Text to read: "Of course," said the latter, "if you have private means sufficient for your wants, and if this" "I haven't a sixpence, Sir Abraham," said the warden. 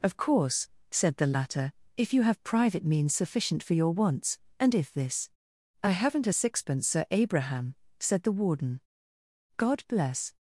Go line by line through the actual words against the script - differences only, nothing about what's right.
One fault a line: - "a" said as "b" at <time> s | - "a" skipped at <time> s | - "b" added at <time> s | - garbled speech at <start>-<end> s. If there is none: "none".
- "God bless" added at 9.6 s